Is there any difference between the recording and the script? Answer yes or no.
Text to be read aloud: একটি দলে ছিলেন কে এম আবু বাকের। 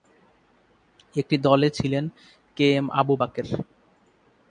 no